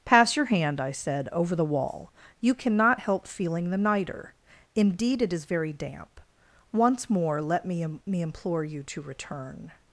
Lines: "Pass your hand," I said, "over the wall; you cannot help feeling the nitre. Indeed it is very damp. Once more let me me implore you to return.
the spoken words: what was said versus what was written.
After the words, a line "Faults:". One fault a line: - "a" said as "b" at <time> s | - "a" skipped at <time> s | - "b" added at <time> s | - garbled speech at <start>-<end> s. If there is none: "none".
"Pass your hand," I said, "over the wall; you cannot help feeling the nitre. Indeed it is very damp. Once more let me me implore you to return.
Faults:
none